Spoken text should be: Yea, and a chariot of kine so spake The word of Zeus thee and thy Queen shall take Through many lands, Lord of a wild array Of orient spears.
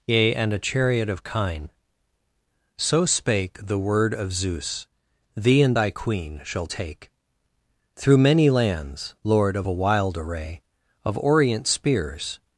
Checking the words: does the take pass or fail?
pass